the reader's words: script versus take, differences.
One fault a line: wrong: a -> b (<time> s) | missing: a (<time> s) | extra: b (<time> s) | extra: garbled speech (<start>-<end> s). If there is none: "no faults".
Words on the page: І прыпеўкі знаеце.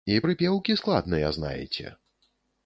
extra: складныя (0.8 s)